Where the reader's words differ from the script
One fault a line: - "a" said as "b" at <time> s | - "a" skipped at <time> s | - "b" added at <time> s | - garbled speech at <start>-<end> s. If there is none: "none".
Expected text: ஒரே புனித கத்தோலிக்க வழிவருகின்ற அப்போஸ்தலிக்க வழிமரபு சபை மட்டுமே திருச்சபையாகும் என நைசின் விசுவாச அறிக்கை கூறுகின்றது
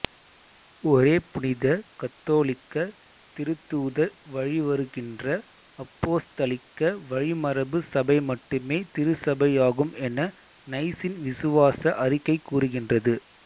- "திருத்தூதர்" added at 3.4 s